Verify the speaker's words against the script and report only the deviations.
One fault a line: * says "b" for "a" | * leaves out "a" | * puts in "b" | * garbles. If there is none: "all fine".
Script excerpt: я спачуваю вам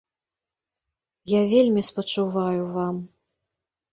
* puts in "вельмі"